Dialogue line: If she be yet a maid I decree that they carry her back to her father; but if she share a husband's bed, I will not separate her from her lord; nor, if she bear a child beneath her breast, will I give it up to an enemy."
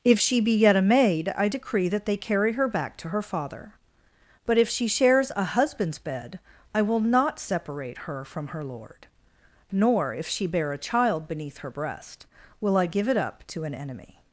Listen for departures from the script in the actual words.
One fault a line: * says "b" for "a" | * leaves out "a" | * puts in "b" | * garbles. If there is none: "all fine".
* says "shares" for "share"